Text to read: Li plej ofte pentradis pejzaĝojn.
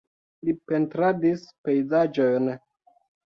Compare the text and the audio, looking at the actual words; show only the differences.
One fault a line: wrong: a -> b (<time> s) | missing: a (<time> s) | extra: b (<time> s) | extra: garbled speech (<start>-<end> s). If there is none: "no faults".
missing: plej ofte (0.5 s)